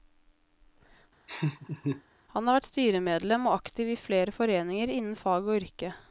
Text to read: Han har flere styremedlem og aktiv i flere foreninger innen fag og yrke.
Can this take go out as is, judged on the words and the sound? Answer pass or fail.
fail